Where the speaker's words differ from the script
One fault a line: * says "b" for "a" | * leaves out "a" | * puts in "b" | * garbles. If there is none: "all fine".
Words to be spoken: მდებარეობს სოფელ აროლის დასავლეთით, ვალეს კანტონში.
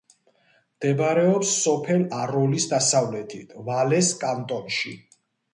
all fine